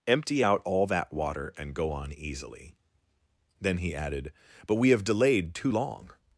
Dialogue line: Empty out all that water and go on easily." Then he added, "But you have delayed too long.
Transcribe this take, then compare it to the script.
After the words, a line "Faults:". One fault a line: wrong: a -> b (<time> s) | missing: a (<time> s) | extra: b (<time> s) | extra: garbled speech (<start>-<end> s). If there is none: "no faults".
Empty out all that water and go on easily." Then he added, "But we have delayed too long.
Faults:
wrong: you -> we (4.7 s)